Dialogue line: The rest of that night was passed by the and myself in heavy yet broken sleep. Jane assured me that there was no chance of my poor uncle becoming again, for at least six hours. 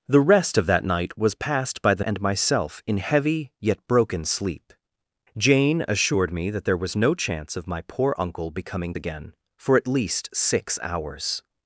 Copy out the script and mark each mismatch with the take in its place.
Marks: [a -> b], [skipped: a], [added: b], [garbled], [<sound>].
The rest of that night was passed by the and myself in heavy yet broken sleep. Jane assured me that there was no chance of my poor uncle becoming again, for at least six hours.